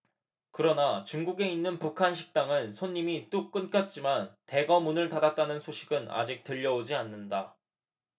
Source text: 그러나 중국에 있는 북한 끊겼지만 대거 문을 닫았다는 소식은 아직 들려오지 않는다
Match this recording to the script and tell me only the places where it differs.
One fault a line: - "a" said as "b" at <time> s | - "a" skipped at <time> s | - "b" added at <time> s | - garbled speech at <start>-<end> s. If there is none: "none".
- "식당은 손님이 뚝" added at 2.1 s